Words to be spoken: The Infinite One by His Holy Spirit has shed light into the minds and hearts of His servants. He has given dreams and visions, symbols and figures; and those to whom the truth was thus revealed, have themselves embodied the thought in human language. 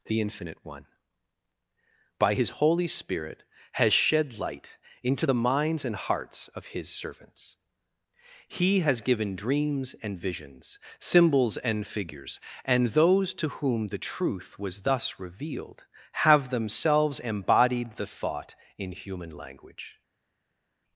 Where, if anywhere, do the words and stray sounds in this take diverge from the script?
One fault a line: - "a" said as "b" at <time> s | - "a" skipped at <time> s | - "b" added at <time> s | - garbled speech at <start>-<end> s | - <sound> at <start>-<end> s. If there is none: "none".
none